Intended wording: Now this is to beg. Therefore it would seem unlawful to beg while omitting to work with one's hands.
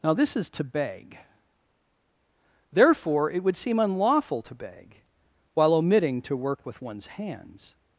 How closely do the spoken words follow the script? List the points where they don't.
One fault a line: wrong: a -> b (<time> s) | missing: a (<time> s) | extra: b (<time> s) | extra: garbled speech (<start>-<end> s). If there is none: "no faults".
no faults